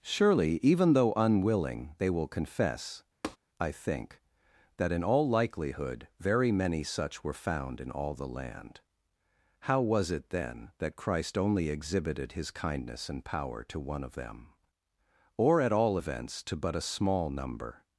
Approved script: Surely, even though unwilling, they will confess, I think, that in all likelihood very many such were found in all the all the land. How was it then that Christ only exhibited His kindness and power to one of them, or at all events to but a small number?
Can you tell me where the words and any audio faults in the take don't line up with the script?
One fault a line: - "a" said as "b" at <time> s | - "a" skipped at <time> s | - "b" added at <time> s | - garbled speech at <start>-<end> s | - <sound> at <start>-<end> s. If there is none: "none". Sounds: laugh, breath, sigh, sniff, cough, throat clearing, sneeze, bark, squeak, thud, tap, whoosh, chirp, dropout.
- tap at 3.2-3.4 s
- "all the" skipped at 8.3 s